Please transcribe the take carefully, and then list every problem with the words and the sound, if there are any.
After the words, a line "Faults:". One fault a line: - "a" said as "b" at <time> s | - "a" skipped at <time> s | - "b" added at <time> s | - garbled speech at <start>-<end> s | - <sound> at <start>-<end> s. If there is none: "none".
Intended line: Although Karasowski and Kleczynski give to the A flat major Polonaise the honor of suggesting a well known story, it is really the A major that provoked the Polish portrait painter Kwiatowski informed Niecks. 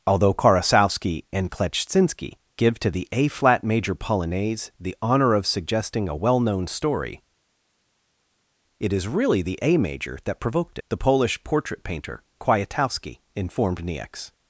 Although Karasowski and Kleczynski give to the A flat major Polonaise the honor of suggesting a well known story, it is really the A major that provoked the Polish portrait painter Kwiatowski informed Niecks.
Faults:
none